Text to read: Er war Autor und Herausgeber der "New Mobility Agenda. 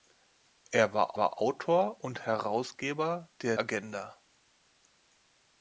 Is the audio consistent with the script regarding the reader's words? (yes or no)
no